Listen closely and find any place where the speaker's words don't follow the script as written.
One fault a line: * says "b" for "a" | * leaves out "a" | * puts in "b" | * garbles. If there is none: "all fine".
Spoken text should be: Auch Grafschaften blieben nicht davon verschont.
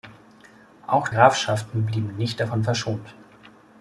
all fine